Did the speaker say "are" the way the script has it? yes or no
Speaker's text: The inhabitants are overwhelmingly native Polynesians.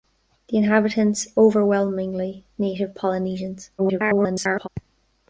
no